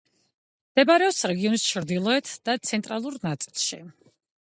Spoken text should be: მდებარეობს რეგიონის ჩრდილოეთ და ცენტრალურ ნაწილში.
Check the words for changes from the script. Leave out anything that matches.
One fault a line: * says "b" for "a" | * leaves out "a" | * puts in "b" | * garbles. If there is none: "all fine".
all fine